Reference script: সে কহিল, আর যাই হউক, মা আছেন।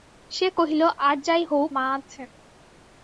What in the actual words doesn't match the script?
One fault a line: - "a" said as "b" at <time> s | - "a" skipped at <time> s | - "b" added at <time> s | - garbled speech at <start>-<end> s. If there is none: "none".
none